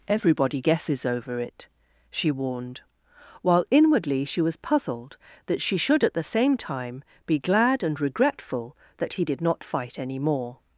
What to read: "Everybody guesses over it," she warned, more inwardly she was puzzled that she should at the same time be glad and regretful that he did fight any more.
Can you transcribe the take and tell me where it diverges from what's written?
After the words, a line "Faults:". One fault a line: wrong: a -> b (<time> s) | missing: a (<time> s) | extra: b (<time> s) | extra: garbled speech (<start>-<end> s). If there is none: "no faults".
"Everybody guesses over it," she warned, while inwardly she was puzzled that she should at the same time be glad and regretful that he did not fight any more.
Faults:
wrong: more -> while (3.4 s)
extra: not (9.4 s)